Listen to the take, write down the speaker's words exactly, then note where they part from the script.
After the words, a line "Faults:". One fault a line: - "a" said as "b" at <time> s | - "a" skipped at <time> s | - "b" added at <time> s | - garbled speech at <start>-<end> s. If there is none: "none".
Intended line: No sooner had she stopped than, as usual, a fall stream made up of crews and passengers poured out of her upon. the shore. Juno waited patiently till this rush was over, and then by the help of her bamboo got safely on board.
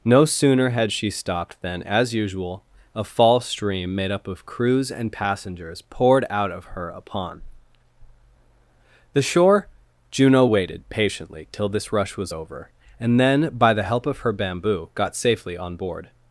No sooner had she stopped than, as usual, a fall stream made up of crews and passengers poured out of her upon. the shore. Juno waited patiently till this rush was over, and then by the help of her bamboo got safely on board.
Faults:
none